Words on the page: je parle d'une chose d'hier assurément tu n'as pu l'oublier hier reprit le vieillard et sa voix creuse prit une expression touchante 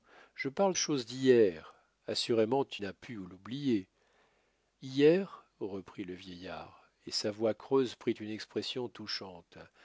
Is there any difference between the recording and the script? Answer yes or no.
yes